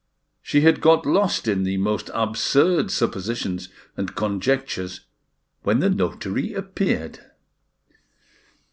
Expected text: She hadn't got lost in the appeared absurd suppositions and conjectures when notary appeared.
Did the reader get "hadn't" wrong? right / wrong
wrong